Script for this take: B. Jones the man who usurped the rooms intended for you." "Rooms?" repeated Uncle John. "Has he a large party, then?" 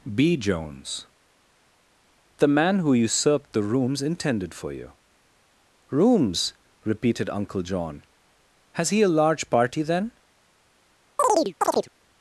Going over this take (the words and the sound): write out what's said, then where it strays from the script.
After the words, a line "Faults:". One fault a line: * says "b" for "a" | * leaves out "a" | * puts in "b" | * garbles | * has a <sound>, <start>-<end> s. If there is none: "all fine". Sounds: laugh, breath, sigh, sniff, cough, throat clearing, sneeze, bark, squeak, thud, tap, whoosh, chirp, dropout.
B. Jones the man who usurped the rooms intended for you." "Rooms?" repeated Uncle John. "Has he a large party, then?"
Faults:
* has a chirp, 11.2-11.9 s